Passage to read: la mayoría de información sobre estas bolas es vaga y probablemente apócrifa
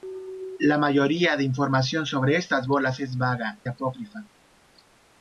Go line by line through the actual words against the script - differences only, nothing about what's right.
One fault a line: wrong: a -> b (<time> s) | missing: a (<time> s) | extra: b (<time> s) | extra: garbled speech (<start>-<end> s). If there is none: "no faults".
missing: y probablemente (3.6 s)